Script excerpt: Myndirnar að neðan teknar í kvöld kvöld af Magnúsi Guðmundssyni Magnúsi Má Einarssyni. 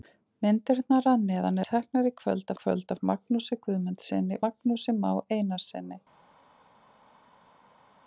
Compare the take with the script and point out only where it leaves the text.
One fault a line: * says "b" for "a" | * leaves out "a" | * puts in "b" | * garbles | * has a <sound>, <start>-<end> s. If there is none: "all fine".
all fine